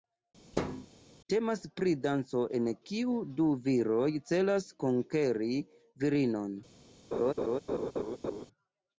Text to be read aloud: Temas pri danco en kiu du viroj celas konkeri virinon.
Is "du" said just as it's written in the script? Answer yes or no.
yes